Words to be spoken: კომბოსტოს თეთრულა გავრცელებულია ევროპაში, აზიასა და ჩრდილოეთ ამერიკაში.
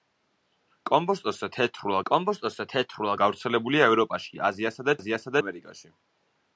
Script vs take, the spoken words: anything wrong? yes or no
yes